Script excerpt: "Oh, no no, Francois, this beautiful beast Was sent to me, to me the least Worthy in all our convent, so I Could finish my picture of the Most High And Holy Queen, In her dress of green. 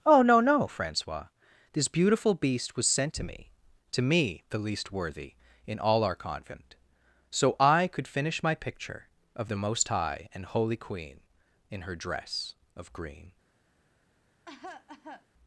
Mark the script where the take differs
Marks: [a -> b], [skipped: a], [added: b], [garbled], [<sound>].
"Oh, no no, Francois, this beautiful beast Was sent to me, to me the least Worthy in all our convent, so I Could finish my picture of the Most High And Holy Queen, In her dress of green. [cough]